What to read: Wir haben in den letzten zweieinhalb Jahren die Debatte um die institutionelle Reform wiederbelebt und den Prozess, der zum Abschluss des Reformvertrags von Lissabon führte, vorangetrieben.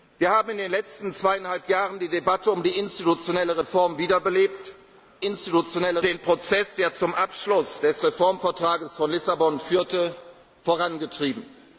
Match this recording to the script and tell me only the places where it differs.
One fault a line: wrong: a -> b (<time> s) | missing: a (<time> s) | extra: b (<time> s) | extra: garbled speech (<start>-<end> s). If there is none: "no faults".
wrong: und -> institutionelle (5.2 s)